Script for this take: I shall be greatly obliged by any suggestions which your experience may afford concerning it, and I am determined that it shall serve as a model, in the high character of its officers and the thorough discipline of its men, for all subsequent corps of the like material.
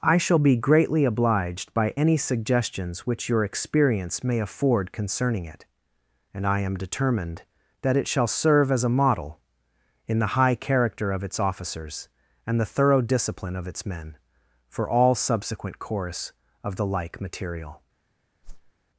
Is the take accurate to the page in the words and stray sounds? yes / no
no